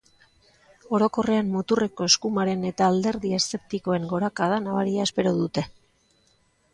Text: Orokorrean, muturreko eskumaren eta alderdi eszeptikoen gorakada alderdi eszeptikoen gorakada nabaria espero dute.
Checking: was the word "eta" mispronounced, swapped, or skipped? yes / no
no